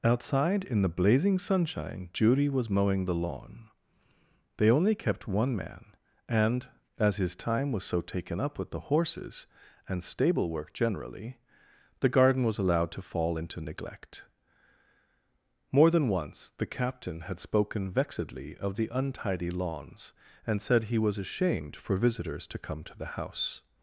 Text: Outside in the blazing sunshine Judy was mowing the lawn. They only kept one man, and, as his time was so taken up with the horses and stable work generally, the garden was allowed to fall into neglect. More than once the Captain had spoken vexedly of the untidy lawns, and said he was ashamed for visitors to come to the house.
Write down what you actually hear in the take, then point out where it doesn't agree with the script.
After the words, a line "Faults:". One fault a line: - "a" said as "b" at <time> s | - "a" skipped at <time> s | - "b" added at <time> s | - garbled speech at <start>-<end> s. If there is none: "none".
Outside in the blazing sunshine Judy was mowing the lawn. They only kept one man, and, as his time was so taken up with the horses and stable work generally, the garden was allowed to fall into neglect. More than once the Captain had spoken vexedly of the untidy lawns, and said he was ashamed for visitors to come to the house.
Faults:
none